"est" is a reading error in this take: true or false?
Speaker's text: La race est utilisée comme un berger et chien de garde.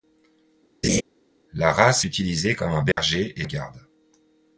true